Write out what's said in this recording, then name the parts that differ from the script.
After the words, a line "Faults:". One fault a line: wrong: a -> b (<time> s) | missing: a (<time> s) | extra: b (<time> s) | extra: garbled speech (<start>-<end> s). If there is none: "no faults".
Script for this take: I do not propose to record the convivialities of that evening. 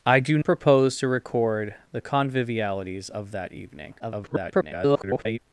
I do propose to record the convivialities of that evening. [garbled]
Faults:
missing: not (0.4 s)
extra: garbled speech (4.0-5.4 s)